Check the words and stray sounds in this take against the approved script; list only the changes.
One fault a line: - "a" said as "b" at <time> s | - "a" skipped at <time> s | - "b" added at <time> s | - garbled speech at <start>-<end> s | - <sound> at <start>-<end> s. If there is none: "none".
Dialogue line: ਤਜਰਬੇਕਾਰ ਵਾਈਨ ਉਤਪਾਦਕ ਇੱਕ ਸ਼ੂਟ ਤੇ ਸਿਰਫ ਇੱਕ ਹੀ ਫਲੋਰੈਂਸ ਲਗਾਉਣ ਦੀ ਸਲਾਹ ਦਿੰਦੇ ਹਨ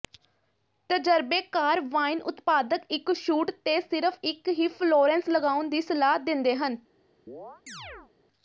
- chirp at 7.3-8.1 s